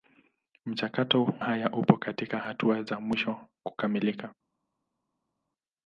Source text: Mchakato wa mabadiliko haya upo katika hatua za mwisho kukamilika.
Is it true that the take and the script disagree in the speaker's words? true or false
true